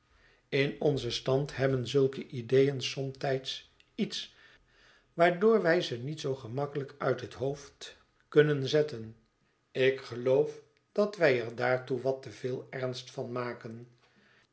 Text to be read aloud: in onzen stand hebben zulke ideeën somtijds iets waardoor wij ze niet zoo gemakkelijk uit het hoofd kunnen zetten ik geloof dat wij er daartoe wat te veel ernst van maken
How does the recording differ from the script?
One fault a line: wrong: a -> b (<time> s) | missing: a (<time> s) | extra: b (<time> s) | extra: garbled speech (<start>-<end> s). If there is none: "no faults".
no faults